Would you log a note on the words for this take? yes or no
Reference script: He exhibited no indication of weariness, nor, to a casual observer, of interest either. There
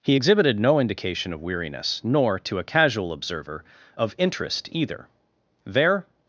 no